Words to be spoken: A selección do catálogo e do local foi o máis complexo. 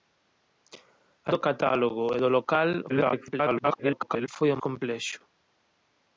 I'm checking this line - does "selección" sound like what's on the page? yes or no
no